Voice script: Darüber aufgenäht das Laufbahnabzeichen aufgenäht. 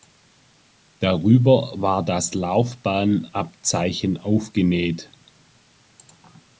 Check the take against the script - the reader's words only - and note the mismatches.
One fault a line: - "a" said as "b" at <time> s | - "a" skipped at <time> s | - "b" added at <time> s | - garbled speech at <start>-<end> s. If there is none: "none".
- "aufgenäht" said as "war" at 1.8 s